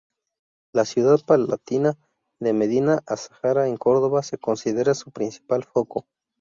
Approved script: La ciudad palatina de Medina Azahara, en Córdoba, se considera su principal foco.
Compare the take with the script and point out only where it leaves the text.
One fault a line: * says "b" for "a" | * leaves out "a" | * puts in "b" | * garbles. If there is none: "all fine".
all fine